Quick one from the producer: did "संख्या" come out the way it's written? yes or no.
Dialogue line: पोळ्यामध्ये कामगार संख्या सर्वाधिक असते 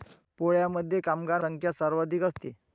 yes